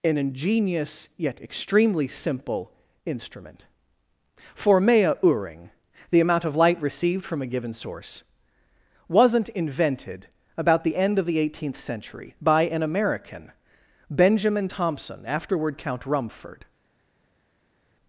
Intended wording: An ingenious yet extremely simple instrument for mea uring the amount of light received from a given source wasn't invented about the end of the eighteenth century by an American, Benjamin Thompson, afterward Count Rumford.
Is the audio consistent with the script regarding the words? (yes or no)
yes